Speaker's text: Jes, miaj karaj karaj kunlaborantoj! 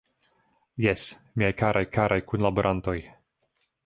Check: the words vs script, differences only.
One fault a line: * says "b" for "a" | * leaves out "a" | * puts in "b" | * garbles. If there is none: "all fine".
all fine